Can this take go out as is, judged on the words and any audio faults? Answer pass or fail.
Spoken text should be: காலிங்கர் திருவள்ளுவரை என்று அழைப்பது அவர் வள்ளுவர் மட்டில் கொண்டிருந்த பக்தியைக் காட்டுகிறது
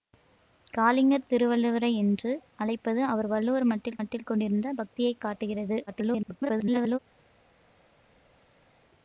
fail